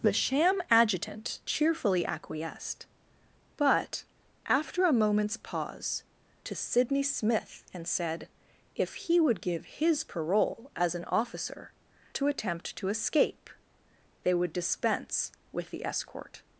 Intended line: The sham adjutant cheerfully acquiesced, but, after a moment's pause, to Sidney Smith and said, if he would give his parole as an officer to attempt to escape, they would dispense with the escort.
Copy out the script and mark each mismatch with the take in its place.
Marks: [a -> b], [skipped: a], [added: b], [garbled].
The sham adjutant cheerfully acquiesced, but, after a moment's pause, to Sidney Smith and said, if he would give his parole as an officer to attempt to escape, they would dispense with the escort.